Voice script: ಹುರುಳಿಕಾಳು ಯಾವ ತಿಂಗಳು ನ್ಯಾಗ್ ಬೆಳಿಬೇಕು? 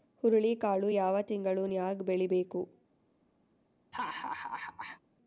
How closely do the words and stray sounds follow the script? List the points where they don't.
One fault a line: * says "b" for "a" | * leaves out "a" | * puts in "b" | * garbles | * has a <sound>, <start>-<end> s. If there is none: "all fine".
* has a laugh, 3.9-5.0 s